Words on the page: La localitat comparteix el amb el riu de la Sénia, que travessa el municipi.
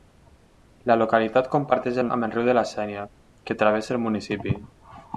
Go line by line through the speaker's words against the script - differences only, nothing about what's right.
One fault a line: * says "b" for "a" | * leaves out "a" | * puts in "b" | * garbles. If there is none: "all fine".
all fine